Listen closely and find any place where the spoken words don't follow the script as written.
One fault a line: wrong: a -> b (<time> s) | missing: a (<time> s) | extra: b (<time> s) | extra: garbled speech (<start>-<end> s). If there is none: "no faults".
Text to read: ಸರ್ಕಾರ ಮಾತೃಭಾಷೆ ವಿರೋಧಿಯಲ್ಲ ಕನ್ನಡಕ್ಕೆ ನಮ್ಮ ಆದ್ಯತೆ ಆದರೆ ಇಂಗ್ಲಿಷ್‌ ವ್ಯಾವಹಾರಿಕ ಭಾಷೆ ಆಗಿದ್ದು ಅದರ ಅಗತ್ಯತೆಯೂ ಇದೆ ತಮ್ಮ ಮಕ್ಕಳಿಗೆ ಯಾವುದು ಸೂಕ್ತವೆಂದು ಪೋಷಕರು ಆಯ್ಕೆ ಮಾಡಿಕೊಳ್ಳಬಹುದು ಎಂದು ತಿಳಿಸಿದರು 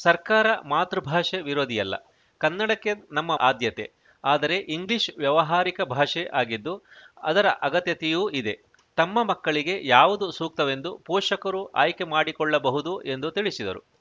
no faults